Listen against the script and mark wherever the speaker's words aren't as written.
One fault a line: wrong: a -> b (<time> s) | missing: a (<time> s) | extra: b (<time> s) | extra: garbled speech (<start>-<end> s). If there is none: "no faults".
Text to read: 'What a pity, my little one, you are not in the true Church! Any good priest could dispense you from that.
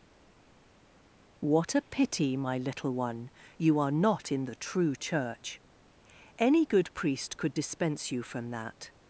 no faults